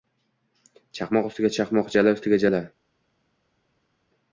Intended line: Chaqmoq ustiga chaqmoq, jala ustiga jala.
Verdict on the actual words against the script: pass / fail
pass